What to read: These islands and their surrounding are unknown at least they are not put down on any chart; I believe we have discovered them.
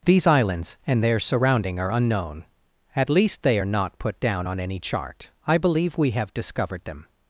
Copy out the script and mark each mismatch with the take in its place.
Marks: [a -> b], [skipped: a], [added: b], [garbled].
These islands and their surrounding are unknown at least they are not put down on any chart; I believe we have discovered them.